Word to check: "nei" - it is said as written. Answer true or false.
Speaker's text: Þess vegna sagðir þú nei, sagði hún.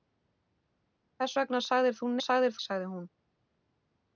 false